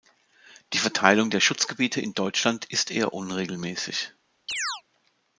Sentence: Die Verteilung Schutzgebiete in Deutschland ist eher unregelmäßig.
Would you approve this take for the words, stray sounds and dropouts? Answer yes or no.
no